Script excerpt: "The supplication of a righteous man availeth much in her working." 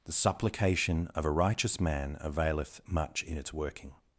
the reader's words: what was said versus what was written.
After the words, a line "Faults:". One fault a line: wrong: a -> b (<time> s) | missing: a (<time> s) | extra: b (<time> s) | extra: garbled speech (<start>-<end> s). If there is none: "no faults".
"The supplication of a righteous man availeth much in its working."
Faults:
wrong: her -> its (3.4 s)